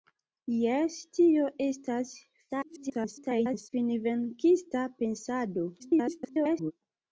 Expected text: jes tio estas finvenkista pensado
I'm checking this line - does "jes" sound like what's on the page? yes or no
yes